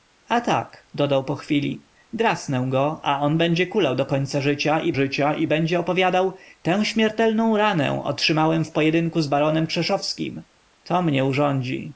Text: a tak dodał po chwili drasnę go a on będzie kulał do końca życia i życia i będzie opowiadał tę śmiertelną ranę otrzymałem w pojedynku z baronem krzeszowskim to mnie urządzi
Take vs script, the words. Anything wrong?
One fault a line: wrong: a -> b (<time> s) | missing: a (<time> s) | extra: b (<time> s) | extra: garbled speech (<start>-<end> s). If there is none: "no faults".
no faults